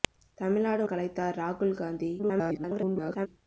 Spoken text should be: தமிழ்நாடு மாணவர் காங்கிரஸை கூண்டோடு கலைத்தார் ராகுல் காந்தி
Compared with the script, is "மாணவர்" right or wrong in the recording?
wrong